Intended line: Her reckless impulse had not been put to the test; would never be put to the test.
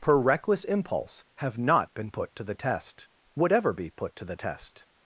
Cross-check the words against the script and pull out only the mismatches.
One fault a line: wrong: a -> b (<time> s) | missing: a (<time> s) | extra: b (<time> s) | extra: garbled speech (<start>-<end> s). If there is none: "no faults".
wrong: had -> have (1.4 s)
wrong: never -> ever (3.5 s)